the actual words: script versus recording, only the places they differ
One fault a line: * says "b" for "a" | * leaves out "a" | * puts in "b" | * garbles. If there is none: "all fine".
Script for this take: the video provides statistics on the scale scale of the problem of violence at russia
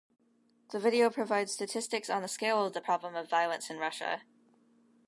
* leaves out "scale"
* says "in" for "at"